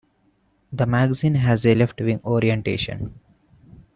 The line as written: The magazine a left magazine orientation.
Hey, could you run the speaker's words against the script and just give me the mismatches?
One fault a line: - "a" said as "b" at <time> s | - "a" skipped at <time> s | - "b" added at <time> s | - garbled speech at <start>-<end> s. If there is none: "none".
- "has" added at 1.4 s
- "magazine" said as "wing" at 2.0 s